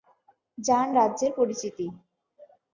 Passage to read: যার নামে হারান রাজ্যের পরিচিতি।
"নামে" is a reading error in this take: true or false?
true